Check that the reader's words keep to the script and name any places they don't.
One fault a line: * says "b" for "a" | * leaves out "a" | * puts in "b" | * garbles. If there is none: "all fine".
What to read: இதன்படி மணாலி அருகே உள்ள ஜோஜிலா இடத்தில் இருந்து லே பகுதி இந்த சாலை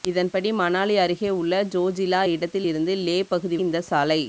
all fine